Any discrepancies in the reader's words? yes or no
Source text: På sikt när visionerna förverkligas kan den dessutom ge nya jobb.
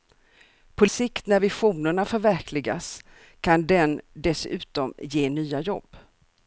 no